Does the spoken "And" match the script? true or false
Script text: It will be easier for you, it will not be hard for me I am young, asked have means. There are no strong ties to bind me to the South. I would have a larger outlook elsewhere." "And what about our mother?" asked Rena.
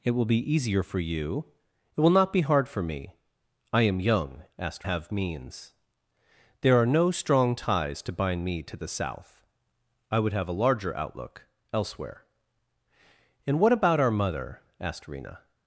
true